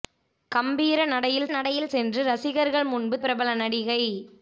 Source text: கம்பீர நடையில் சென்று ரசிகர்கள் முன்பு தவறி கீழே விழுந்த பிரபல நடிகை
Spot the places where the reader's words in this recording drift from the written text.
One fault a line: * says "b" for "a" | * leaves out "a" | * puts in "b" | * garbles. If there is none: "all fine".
* puts in "நடையில்"
* leaves out "தவறி கீழே விழுந்த"